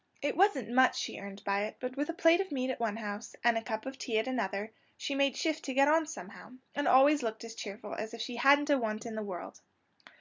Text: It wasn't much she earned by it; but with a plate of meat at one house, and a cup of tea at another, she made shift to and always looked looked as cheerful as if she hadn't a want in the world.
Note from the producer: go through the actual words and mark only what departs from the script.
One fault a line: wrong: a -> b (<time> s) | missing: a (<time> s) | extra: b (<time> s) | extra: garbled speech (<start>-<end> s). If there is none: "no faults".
extra: get on somehow (5.7 s)
missing: looked (7.4 s)